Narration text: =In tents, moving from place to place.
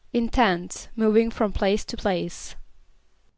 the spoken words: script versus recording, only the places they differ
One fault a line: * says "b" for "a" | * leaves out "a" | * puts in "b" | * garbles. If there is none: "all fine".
all fine